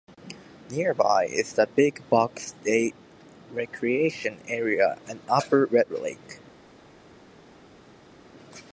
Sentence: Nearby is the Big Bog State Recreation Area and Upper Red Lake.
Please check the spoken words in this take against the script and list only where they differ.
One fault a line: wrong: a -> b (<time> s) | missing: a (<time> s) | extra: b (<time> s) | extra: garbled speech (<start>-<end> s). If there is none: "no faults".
no faults